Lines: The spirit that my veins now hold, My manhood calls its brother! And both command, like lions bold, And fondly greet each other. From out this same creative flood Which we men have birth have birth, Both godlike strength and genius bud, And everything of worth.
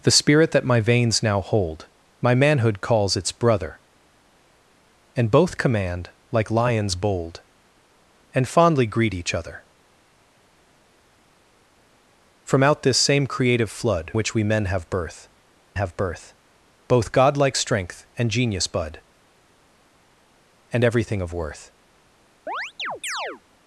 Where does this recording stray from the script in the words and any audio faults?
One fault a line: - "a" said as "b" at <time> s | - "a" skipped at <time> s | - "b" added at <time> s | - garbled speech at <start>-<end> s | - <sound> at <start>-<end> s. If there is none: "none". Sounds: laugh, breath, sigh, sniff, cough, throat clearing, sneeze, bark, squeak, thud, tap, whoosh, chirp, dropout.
- chirp at 22.5-23.4 s